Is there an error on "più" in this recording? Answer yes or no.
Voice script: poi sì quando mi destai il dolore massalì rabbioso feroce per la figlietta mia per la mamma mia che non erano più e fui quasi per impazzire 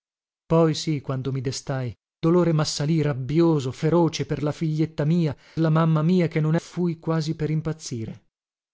yes